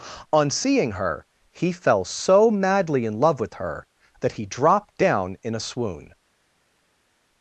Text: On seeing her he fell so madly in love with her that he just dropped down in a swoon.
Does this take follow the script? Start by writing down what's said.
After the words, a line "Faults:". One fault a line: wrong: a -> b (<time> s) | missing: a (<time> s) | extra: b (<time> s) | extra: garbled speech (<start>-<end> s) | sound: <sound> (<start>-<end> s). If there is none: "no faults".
On seeing her he fell so madly in love with her that he dropped down in a swoon.
Faults:
missing: just (4.5 s)